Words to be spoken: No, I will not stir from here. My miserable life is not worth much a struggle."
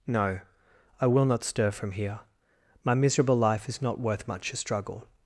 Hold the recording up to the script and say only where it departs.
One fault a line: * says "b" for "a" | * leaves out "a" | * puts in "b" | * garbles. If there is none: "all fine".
all fine